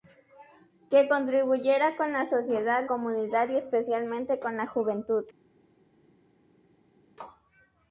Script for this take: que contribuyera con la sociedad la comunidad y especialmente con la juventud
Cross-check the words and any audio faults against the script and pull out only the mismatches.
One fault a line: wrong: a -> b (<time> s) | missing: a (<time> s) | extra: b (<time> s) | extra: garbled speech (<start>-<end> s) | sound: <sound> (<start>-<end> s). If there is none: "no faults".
missing: la (2.9 s)